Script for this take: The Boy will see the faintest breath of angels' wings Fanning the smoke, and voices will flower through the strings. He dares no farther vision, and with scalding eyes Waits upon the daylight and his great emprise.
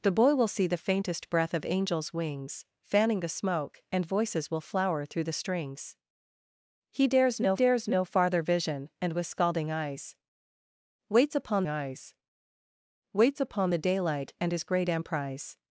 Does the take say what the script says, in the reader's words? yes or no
no